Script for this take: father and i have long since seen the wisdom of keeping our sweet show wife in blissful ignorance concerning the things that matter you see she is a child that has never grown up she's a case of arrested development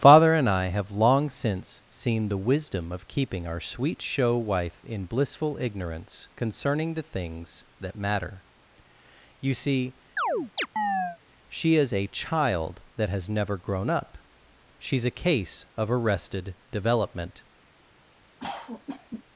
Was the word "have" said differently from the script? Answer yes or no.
no